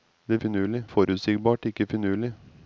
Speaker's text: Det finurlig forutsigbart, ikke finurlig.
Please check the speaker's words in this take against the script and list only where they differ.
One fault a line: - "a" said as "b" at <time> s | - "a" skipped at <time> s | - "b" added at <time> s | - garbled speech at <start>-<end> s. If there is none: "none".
none